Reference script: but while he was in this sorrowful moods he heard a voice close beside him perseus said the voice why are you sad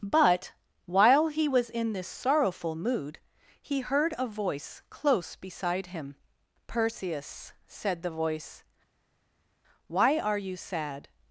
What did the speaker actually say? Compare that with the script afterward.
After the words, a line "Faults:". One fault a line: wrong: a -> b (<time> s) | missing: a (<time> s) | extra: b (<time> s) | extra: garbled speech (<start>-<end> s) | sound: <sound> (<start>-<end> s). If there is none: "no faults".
but while he was in this sorrowful mood he heard a voice close beside him perseus said the voice why are you sad
Faults:
wrong: moods -> mood (2.8 s)